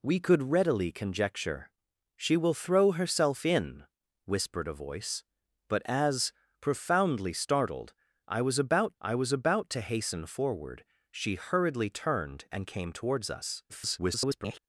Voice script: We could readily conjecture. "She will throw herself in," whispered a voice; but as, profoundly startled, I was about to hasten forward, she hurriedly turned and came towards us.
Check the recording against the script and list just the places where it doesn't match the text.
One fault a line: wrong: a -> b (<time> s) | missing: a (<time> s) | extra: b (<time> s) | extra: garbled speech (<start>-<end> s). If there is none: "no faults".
extra: I was about (9.0 s)
extra: garbled speech (13.7-14.6 s)